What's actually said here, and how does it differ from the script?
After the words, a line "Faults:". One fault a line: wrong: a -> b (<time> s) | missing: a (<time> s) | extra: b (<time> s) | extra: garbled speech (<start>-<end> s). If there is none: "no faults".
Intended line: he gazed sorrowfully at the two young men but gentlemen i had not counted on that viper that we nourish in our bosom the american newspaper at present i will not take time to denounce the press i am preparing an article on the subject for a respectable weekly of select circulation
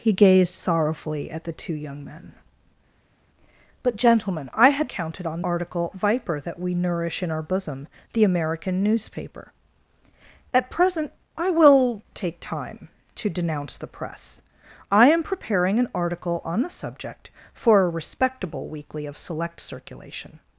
he gazed sorrowfully at the two young men but gentlemen i had counted on article viper that we nourish in our bosom the american newspaper at present i will take time to denounce the press i am preparing an article on the subject for a respectable weekly of select circulation
Faults:
missing: not (4.9 s)
wrong: that -> article (5.4 s)
missing: not (12.0 s)